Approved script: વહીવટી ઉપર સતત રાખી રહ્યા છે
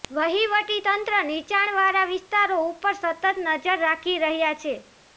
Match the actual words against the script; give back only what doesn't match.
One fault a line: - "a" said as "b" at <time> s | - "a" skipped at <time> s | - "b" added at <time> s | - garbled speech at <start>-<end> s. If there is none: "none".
- "તંત્ર નીચાણવાળા વિસ્તારો" added at 0.8 s
- "નજર" added at 3.4 s